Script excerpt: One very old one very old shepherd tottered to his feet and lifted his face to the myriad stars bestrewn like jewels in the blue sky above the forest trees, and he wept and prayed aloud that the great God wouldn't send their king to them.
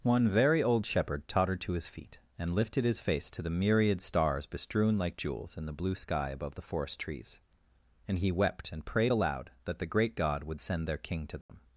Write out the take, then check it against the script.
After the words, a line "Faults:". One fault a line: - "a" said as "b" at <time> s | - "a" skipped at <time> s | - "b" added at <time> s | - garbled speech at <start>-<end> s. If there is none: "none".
One very old shepherd tottered to his feet and lifted his face to the myriad stars bestrewn like jewels in the blue sky above the forest trees, and he wept and prayed aloud that the great God would send their king to them.
Faults:
- "one very old" skipped at 0.8 s
- "wouldn't" said as "would" at 10.4 s